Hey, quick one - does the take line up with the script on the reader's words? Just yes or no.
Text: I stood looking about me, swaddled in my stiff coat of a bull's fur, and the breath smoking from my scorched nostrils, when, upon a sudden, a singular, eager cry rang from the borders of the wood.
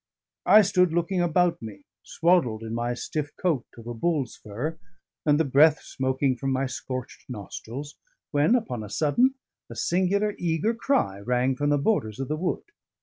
yes